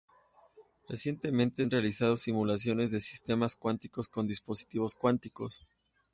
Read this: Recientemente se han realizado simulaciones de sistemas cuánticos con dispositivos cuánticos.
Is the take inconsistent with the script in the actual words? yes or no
yes